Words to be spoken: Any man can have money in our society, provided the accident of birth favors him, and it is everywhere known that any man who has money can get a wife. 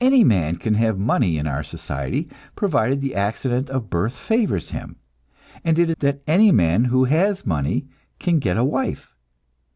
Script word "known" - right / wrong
wrong